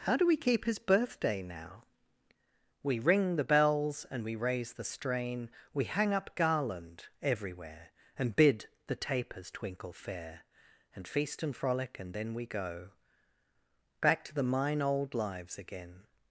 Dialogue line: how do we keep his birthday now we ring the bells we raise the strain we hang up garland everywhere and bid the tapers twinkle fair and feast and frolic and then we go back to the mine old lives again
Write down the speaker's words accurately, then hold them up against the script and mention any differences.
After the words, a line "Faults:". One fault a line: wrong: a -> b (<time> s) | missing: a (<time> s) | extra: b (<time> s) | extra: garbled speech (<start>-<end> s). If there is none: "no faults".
how do we keep his birthday now we ring the bells and we raise the strain we hang up garland everywhere and bid the tapers twinkle fair and feast and frolic and then we go back to the mine old lives again
Faults:
extra: and (4.1 s)